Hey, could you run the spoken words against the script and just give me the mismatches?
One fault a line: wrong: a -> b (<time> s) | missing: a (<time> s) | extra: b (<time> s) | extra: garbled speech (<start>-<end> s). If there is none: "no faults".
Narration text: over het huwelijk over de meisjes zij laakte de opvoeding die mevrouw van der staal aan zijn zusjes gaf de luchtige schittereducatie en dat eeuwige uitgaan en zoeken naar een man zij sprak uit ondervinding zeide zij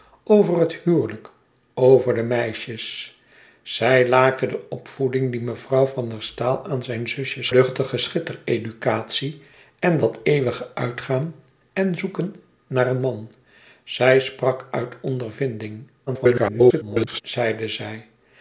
missing: gaf de (7.5 s)
extra: garbled speech (16.1-17.2 s)